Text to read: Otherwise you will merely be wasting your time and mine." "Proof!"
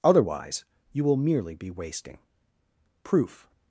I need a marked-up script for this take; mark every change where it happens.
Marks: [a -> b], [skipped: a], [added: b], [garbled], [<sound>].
Otherwise you will merely be wasting [skipped: your time and mine."] "Proof!"